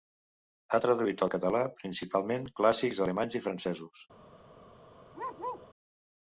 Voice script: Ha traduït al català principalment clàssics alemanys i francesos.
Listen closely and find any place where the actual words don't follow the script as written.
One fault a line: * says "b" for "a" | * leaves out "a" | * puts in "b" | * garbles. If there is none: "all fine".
all fine